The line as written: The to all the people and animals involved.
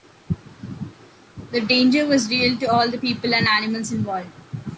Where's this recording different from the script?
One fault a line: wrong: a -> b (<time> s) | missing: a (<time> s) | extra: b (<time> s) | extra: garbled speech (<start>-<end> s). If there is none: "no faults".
extra: danger was real (1.6 s)